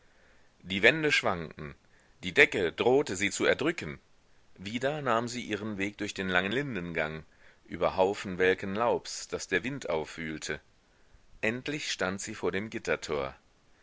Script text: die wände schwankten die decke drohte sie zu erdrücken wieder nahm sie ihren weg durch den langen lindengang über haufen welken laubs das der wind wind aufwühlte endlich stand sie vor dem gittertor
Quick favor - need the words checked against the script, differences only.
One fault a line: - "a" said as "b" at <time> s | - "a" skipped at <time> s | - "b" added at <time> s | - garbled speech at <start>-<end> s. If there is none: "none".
- "wind" skipped at 9.9 s